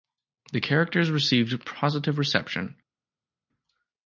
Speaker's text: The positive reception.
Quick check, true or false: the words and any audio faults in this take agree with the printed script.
false